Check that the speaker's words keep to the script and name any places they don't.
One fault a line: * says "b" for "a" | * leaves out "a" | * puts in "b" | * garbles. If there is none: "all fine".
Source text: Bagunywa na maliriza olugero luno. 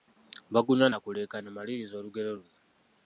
* puts in "kuleekaana"